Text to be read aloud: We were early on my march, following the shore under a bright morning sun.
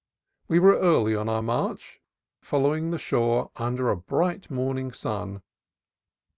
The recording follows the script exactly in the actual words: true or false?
false